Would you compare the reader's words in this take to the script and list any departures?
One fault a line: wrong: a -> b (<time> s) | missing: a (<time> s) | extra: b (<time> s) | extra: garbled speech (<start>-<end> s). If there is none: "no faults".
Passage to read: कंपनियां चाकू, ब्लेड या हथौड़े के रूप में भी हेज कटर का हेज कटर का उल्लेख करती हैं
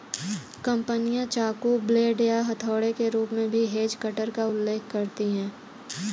missing: हेज कटर का (4.5 s)